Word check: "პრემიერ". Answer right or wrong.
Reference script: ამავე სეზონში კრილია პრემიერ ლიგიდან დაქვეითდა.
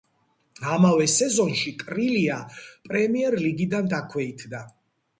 right